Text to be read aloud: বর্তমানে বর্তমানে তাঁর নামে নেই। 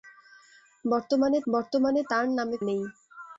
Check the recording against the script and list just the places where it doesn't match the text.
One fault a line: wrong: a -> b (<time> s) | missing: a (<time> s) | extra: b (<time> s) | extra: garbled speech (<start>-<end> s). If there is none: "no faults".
no faults